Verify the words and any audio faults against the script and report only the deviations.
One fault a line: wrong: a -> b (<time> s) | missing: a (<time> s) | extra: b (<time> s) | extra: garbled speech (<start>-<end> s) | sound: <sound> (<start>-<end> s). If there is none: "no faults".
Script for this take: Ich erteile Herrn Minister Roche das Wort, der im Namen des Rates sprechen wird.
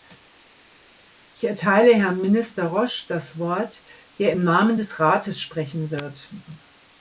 no faults